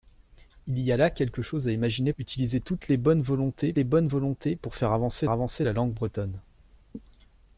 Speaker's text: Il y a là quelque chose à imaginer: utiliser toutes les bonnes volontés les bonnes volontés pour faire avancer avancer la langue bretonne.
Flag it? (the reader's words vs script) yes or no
no